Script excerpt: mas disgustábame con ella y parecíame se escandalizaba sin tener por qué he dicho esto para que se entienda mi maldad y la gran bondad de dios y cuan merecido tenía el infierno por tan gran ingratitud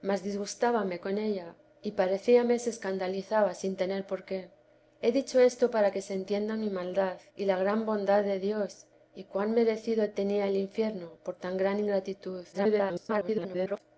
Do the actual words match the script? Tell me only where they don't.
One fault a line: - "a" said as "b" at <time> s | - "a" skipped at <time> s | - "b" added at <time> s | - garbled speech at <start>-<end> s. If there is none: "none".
- garbled speech at 12.5-13.8 s